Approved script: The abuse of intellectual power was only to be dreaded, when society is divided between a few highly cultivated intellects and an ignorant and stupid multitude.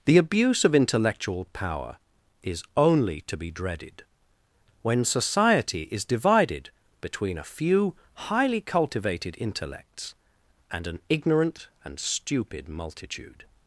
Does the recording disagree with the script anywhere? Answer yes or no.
yes